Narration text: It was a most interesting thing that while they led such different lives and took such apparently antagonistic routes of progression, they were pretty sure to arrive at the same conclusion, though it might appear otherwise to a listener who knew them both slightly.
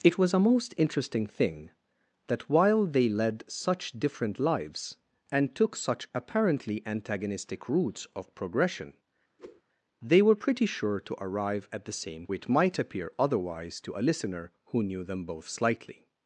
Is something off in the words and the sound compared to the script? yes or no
yes